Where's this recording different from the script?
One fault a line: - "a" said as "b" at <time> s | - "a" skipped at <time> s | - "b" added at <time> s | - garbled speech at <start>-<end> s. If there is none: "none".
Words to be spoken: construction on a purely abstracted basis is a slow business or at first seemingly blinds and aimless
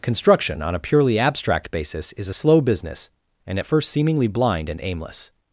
- "abstracted" said as "abstract" at 1.2 s
- "or" said as "and" at 3.5 s
- "blinds" said as "blind" at 4.3 s